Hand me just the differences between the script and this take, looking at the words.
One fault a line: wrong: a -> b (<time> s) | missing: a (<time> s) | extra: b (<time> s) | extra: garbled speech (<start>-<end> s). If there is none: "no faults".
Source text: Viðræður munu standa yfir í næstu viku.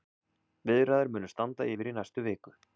no faults